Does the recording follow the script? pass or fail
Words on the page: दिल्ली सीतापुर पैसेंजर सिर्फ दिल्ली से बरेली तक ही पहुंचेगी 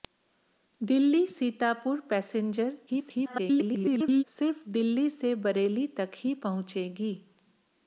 fail